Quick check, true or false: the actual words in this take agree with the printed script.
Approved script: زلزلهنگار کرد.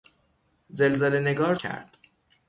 true